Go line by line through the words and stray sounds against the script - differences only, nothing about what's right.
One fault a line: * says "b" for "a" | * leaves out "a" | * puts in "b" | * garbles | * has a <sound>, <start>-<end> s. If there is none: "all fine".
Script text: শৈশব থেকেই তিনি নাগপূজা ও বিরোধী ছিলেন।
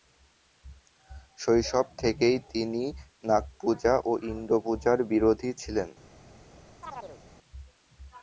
* puts in "ইন্দ্রপূজার"
* has a chirp, 6.8-7.2 s